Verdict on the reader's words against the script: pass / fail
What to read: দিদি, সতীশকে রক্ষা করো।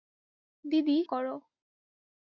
fail